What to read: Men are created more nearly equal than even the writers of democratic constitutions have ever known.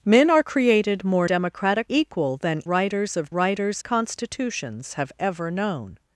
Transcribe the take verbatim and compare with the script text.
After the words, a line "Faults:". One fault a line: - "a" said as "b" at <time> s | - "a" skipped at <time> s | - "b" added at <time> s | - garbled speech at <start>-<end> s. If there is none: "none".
Men are created more democratic equal than writers of writers constitutions have ever known.
Faults:
- "nearly" said as "democratic" at 1.2 s
- "even the" skipped at 2.6 s
- "democratic" said as "writers" at 3.3 s